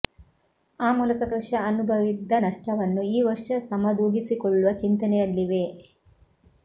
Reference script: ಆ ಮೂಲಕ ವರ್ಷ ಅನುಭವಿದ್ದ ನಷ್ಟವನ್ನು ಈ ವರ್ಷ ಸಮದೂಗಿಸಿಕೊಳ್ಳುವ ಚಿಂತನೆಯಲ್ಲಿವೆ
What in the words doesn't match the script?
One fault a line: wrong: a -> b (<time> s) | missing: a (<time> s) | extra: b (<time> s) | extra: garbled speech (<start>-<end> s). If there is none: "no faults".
no faults